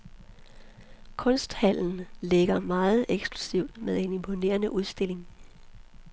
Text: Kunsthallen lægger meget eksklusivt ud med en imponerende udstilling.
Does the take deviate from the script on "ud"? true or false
true